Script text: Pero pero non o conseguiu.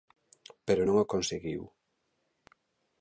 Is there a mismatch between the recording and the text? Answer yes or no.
yes